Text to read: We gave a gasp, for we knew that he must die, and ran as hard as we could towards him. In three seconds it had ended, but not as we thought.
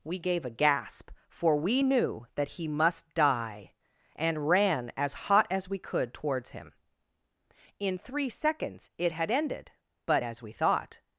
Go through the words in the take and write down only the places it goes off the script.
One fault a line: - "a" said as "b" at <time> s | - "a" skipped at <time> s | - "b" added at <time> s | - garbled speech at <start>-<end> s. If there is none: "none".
- "hard" said as "hot" at 5.1 s
- "not" skipped at 10.2 s